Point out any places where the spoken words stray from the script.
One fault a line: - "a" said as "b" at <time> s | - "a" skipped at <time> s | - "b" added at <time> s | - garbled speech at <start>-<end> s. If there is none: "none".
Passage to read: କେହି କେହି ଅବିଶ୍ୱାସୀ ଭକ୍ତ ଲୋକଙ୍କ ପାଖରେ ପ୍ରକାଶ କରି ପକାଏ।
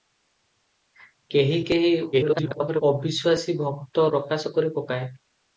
- garbled speech at 2.1-2.8 s
- "ଲୋକଙ୍କ ପାଖରେ" skipped at 4.1 s